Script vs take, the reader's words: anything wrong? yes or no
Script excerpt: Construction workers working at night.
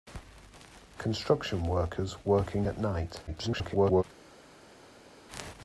yes